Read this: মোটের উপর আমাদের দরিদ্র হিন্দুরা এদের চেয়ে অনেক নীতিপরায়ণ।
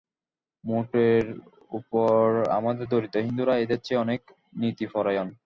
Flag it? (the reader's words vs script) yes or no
no